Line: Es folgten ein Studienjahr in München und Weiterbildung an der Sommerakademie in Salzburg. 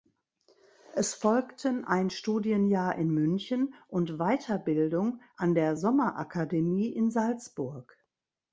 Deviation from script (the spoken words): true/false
false